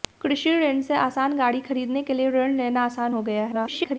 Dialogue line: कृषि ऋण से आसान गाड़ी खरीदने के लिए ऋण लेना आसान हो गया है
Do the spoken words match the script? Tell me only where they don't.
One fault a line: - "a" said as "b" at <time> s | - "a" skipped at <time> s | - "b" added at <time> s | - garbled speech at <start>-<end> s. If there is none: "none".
- garbled speech at 3.5-4.0 s